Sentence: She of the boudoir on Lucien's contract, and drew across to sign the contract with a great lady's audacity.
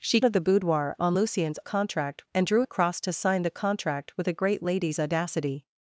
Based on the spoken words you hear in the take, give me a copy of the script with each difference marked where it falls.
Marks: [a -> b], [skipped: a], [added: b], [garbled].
She of the boudoir on Lucien's contract, and drew across to sign the contract with a great lady's audacity.